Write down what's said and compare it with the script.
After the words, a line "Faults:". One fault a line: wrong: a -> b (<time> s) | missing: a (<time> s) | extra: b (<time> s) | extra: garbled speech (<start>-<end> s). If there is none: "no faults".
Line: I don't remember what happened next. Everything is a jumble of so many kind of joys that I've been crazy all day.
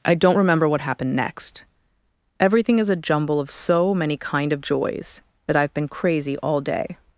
I don't remember what happened next. Everything is a jumble of so many kind of joys that I've been crazy all day.
Faults:
no faults